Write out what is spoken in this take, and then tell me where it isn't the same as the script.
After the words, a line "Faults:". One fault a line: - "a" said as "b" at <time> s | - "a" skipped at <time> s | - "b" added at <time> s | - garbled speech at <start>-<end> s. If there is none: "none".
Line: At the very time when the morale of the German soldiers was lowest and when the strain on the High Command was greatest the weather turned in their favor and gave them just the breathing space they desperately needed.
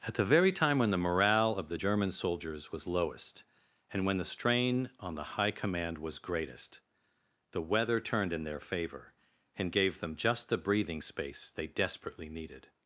At the very time when the morale of the German soldiers was lowest and when the strain on the High Command was greatest the weather turned in their favor and gave them just the breathing space they desperately needed.
Faults:
none